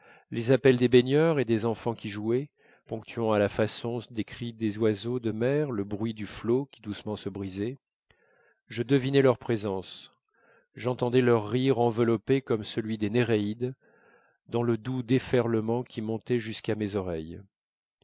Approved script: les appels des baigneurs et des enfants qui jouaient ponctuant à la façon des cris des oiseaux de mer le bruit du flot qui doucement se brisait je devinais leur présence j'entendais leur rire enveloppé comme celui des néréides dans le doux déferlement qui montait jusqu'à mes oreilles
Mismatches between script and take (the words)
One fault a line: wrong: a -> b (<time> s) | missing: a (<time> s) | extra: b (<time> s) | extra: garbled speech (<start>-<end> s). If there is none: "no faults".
no faults